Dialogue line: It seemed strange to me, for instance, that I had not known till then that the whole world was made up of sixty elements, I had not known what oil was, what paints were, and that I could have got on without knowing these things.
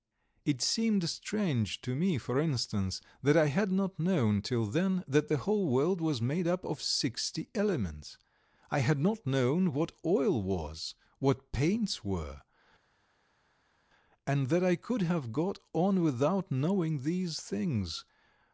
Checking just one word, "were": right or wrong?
right